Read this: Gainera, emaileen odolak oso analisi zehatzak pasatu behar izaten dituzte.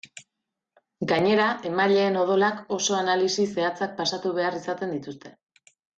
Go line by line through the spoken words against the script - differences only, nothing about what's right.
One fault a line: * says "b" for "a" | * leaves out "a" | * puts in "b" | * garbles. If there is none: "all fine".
all fine